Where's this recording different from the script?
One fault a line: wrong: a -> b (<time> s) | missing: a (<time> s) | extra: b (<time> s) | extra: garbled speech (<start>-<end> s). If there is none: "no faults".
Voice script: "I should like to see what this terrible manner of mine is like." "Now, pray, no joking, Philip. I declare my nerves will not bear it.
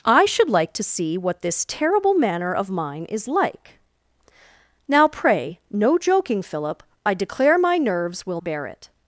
missing: not (8.4 s)